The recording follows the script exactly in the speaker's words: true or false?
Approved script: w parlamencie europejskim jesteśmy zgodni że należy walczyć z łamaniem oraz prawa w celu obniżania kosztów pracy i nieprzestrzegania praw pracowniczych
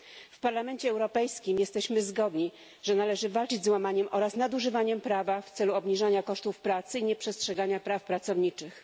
false